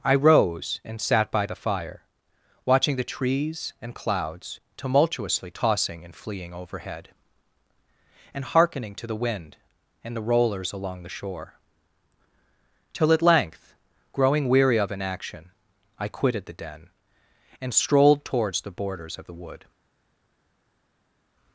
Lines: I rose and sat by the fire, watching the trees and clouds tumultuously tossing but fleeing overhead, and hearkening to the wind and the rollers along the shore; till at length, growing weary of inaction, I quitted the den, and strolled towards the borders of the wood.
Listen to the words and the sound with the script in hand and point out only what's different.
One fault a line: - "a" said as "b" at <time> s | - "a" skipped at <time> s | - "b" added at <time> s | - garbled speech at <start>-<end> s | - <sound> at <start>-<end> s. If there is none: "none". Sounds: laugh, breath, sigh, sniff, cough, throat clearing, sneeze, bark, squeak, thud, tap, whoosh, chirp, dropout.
- "but" said as "and" at 6.0 s